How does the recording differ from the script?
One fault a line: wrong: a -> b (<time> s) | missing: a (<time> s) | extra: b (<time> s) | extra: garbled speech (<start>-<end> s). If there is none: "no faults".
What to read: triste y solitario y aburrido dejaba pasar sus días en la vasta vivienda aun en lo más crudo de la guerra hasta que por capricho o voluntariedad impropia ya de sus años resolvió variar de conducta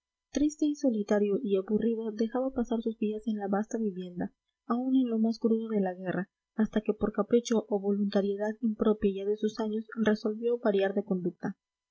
no faults